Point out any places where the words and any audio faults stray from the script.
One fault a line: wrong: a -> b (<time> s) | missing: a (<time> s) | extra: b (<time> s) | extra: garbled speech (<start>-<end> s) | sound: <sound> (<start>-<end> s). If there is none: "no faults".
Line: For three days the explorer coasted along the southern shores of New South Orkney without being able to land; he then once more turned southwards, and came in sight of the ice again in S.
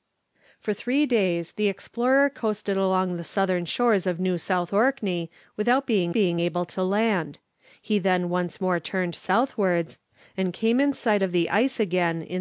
extra: being (6.1 s)